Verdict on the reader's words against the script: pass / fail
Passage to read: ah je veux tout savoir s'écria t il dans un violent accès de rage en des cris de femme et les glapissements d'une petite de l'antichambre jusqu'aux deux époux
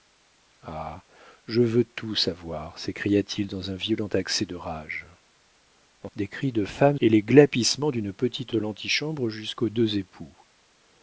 pass